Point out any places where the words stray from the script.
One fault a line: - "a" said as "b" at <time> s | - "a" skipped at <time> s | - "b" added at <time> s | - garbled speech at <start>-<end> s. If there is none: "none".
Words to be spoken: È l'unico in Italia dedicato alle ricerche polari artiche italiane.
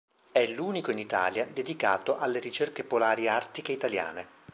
none